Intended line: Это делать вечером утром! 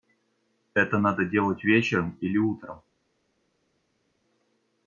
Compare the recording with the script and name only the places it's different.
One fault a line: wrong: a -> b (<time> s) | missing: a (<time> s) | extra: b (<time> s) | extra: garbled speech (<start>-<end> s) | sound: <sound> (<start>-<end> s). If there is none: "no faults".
extra: надо (1.0 s)
extra: или (2.2 s)